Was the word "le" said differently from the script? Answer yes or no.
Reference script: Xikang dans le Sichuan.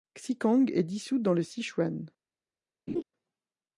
no